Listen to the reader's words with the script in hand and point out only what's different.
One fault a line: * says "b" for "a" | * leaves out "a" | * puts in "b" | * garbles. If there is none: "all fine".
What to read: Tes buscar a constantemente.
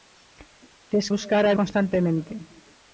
all fine